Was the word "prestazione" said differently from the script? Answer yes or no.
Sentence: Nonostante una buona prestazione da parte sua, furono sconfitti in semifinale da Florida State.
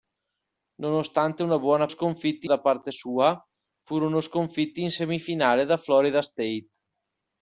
yes